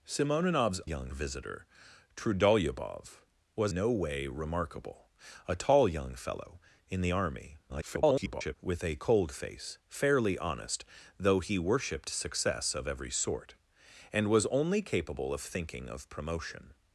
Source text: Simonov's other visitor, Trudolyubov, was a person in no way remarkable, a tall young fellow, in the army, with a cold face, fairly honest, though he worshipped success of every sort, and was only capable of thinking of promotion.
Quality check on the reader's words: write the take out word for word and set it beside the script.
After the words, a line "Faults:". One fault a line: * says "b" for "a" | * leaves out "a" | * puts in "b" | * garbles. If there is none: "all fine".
Simonov's young visitor, Trudolyubov, was no way remarkable, a tall young fellow, in the army, [garbled] with a cold face, fairly honest, though he worshipped success of every sort, and was only capable of thinking of promotion.
Faults:
* says "young" for "other"
* leaves out "a person in"
* garbles